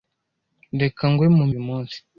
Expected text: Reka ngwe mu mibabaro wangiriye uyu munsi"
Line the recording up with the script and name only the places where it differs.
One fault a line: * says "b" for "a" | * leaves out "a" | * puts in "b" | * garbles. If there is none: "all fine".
* leaves out "mibabaro wangiriye"